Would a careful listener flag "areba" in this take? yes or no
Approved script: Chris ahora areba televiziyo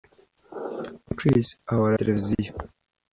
yes